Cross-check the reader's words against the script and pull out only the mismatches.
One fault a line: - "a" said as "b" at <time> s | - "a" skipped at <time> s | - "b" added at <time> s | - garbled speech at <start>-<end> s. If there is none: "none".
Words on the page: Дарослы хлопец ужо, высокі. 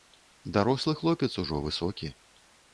none